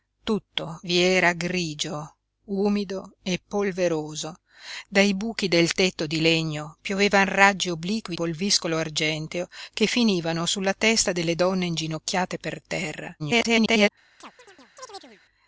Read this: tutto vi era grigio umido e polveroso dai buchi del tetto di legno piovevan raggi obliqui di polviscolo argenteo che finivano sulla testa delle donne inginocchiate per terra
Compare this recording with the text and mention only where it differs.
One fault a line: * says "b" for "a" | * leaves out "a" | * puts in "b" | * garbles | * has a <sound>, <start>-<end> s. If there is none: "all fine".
* leaves out "di"
* garbles
* has a chirp, 14.2-15.2 s